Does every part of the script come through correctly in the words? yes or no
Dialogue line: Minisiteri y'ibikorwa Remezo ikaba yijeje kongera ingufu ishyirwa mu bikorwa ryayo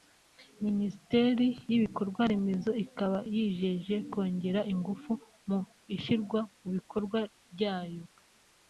no